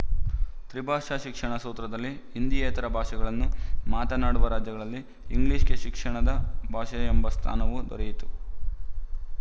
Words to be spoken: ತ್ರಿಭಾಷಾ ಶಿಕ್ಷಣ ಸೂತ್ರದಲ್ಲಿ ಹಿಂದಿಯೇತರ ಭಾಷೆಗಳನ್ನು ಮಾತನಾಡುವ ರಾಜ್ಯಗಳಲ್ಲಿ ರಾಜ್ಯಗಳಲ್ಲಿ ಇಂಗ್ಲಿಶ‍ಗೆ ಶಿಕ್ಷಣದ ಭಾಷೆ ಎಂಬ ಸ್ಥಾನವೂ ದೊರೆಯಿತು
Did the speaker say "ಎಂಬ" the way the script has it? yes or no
yes